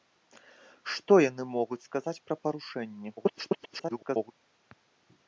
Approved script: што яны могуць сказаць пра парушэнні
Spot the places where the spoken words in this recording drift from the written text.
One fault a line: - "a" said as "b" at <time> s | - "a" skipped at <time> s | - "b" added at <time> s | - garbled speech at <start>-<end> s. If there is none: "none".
- garbled speech at 3.2-4.3 s